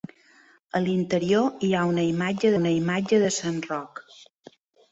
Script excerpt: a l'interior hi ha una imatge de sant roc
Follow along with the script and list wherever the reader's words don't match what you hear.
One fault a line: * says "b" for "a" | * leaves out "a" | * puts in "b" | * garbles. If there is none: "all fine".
* puts in "una imatge"